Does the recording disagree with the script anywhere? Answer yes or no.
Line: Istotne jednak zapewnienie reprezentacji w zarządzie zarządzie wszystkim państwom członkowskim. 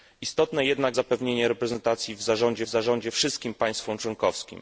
no